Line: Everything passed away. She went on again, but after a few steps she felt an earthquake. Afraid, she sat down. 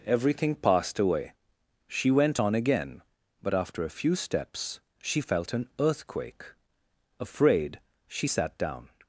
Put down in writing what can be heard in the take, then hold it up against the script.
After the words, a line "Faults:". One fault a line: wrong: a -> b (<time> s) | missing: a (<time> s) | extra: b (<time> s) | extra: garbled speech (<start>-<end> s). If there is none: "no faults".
Everything passed away. She went on again, but after a few steps she felt an earthquake. Afraid, she sat down.
Faults:
no faults